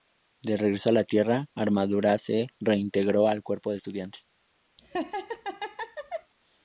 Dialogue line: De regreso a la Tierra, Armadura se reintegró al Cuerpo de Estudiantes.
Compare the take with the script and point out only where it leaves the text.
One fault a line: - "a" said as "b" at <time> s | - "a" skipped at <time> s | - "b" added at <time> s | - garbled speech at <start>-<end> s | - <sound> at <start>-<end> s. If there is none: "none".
- laugh at 4.8-6.3 s